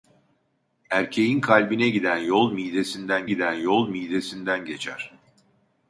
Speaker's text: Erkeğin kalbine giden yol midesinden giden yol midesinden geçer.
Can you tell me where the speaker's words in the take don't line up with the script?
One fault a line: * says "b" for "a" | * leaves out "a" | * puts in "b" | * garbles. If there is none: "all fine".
all fine